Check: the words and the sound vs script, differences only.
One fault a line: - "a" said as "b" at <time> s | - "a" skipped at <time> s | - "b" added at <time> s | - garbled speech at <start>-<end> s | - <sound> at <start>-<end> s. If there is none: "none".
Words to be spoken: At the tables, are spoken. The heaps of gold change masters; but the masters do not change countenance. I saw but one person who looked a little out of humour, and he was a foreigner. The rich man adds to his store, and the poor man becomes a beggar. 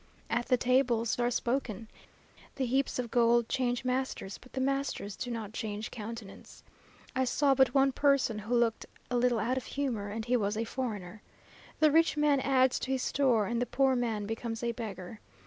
none